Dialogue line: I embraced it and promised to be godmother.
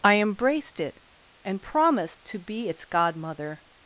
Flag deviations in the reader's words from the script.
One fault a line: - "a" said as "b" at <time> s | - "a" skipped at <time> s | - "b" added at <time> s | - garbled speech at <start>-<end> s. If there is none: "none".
- "its" added at 2.7 s